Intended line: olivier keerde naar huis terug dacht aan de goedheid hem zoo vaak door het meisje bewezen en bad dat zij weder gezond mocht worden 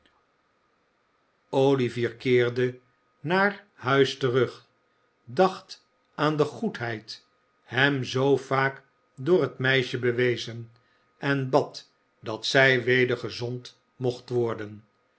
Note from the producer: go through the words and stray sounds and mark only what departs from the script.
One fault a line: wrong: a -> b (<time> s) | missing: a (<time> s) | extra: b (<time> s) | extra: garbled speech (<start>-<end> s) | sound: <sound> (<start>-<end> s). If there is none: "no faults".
no faults